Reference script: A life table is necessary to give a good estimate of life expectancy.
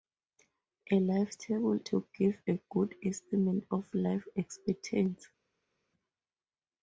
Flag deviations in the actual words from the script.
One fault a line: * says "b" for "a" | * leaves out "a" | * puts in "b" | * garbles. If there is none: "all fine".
* leaves out "is necessary"